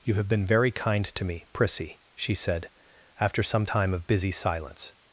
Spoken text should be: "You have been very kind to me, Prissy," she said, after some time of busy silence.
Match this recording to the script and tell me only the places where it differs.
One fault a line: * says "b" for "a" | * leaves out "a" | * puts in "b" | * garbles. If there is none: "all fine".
all fine